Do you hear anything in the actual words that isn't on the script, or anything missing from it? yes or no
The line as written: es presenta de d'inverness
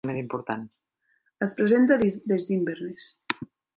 yes